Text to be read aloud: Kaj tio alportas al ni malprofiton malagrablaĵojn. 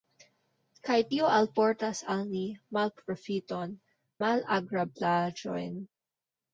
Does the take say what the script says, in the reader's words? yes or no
yes